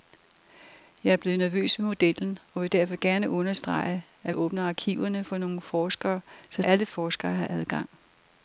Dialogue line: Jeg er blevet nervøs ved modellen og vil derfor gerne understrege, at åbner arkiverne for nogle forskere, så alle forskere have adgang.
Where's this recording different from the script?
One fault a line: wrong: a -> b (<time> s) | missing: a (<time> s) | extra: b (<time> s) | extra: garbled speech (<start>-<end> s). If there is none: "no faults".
no faults